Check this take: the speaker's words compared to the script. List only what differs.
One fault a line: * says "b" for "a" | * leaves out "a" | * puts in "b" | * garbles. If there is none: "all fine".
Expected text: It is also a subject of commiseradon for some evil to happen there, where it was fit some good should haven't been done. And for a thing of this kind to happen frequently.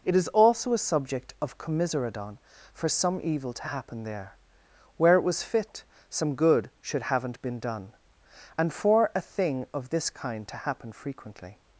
all fine